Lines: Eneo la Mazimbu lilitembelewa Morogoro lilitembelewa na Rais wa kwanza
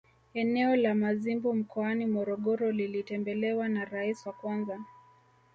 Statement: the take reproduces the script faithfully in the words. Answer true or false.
false